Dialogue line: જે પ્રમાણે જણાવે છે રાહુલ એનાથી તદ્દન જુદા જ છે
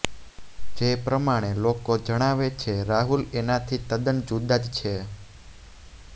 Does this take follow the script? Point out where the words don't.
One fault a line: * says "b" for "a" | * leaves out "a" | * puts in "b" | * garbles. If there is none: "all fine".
* puts in "લોકો"